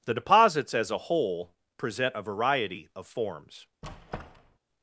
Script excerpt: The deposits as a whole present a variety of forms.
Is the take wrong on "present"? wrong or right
right